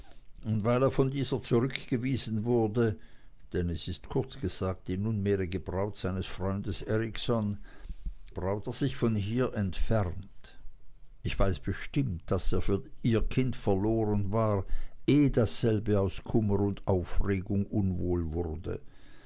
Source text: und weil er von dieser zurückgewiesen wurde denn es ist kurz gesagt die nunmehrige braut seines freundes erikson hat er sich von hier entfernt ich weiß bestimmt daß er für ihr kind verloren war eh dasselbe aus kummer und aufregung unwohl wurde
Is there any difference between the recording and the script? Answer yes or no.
yes